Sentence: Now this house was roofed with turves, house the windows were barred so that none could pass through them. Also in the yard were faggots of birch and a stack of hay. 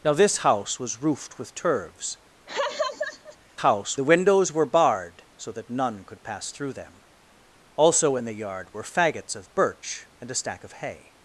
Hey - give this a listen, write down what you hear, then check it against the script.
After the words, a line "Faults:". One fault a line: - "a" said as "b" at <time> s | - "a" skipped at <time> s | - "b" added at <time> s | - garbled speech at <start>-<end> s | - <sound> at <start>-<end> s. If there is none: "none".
Now this house was roofed with turves, house the windows were barred so that none could pass through them. Also in the yard were faggots of birch and a stack of hay.
Faults:
- laugh at 2.5-3.4 s